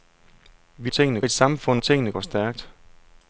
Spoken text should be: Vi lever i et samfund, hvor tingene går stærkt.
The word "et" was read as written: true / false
true